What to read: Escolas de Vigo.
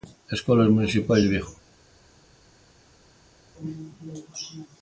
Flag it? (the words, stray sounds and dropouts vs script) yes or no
yes